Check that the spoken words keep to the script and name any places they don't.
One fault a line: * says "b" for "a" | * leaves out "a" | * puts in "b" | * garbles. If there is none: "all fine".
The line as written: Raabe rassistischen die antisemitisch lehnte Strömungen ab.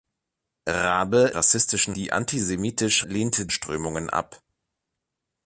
all fine